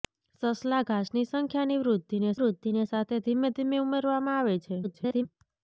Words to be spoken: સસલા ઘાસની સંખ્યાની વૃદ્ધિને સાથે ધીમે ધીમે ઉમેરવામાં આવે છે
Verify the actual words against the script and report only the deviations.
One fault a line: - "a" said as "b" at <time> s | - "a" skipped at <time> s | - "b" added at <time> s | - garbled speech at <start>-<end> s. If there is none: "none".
- "વૃદ્ધિને" added at 2.4 s
- garbled speech at 4.8-5.3 s